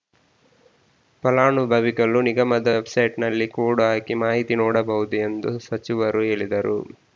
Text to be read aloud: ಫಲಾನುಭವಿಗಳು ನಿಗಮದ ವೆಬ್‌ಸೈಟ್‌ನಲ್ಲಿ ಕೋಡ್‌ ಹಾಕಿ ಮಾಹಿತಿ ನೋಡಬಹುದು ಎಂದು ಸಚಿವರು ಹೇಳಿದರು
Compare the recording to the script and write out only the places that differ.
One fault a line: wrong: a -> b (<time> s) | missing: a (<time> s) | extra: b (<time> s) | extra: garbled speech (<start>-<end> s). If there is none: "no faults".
no faults